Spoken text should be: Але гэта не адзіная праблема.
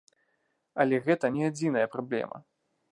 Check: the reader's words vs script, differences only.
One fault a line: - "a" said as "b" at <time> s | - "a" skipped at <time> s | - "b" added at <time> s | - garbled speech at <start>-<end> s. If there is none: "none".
none